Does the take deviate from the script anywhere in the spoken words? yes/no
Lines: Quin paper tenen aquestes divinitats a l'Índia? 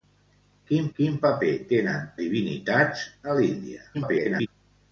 yes